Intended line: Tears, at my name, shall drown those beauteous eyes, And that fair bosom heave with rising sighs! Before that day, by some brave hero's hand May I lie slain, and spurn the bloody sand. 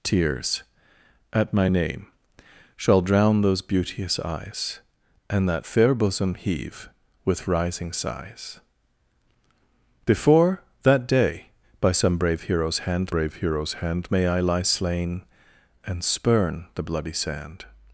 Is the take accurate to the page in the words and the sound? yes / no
no